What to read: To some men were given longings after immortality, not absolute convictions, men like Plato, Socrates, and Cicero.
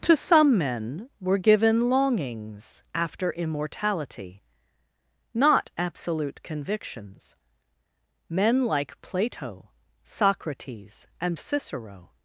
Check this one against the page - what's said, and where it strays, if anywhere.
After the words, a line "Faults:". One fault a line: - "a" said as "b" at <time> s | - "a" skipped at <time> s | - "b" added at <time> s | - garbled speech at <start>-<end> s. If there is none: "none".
To some men were given longings after immortality, not absolute convictions, men like Plato, Socrates, and Cicero.
Faults:
none